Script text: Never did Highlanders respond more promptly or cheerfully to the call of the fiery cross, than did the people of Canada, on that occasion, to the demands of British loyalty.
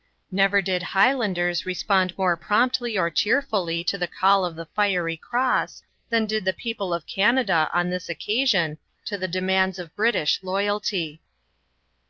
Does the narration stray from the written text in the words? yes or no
yes